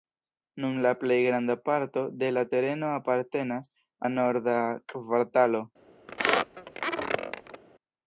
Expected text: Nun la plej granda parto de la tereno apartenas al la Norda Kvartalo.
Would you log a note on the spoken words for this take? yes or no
yes